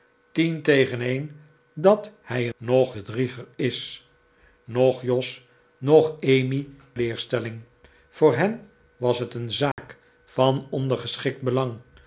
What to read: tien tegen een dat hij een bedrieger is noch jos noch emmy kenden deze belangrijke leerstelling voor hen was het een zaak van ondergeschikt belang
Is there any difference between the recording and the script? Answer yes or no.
yes